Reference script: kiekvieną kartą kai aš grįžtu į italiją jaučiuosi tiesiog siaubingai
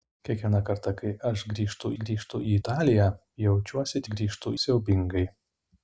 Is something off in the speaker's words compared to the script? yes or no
yes